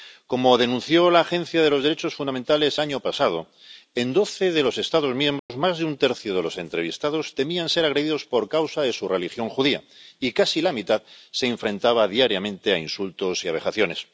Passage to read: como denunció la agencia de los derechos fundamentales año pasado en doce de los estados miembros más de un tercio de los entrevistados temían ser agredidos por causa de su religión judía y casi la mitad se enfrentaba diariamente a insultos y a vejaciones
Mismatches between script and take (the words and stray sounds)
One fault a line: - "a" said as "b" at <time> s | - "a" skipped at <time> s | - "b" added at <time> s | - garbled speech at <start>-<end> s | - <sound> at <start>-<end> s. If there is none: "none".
- dropout at 5.4-5.5 s